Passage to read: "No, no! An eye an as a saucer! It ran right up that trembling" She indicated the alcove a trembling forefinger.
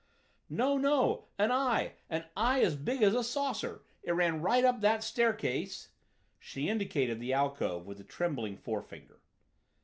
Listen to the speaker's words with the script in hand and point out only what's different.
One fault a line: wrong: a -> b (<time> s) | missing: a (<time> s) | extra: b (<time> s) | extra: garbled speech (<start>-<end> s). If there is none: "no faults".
extra: eye (2.4 s)
extra: big as (2.8 s)
wrong: trembling -> staircase (5.0 s)
extra: with (7.8 s)